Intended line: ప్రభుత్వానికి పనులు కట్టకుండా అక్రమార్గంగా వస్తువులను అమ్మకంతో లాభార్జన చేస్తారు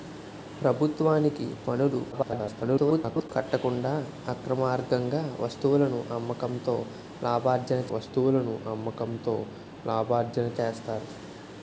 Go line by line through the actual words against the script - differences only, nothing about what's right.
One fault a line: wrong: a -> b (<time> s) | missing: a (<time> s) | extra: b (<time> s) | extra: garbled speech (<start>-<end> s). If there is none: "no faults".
extra: garbled speech (2.1-3.3 s)
extra: వస్తువులను అమ్మకంతో లాభార్జన (7.9 s)